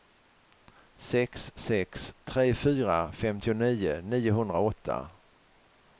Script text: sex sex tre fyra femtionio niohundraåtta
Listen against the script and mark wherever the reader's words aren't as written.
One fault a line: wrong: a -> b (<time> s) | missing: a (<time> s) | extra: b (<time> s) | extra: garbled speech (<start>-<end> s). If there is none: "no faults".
no faults